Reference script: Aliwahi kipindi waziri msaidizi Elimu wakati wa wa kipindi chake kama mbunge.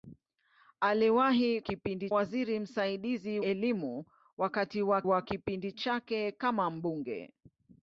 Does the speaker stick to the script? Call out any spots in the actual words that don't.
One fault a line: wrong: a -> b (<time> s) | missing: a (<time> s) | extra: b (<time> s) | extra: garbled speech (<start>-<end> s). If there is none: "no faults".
no faults